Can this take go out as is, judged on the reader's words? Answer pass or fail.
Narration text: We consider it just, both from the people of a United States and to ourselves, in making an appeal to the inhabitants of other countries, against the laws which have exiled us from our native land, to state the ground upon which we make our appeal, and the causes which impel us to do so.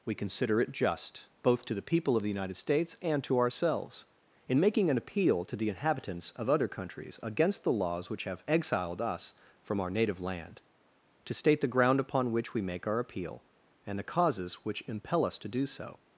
fail